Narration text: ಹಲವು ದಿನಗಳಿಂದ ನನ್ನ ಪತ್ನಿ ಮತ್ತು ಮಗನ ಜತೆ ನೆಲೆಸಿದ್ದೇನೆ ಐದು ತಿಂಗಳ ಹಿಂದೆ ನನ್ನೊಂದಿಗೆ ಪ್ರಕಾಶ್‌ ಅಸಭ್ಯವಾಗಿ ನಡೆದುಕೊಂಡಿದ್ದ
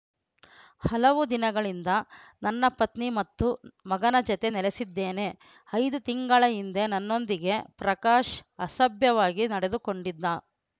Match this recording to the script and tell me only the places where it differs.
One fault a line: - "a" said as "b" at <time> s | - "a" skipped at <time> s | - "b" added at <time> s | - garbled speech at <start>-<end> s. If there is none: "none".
none